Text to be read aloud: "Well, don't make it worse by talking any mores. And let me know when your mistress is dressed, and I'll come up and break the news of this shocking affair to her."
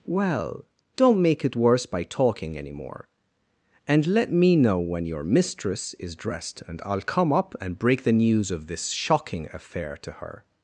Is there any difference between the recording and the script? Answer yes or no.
yes